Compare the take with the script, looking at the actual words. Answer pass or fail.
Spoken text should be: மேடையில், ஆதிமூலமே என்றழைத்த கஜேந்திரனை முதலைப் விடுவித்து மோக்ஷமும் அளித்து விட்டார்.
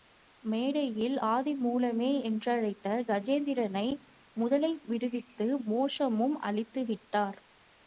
pass